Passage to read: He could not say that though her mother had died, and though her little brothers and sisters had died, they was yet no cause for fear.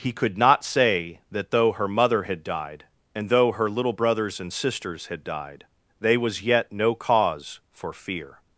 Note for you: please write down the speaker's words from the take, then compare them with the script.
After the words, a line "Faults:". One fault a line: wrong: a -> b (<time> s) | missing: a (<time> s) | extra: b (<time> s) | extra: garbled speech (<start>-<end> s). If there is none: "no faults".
He could not say that though her mother had died, and though her little brothers and sisters had died, they was yet no cause for fear.
Faults:
no faults